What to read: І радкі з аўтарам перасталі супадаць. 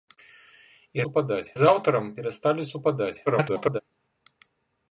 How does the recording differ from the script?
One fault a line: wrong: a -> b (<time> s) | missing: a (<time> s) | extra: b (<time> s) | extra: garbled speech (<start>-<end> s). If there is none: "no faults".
wrong: радкі -> супадаць (1.1 s)
extra: garbled speech (3.3-3.8 s)